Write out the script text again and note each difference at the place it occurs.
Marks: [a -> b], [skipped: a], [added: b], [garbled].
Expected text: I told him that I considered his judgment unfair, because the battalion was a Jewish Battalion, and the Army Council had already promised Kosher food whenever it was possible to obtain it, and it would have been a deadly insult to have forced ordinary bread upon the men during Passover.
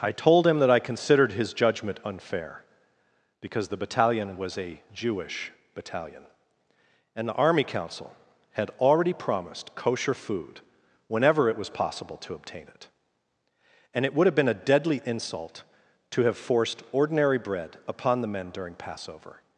I told him that I considered his judgment unfair, because the battalion was a Jewish Battalion, and the Army Council had already promised Kosher food whenever it was possible to obtain it, and it would have been a deadly insult to have forced ordinary bread upon the men during Passover.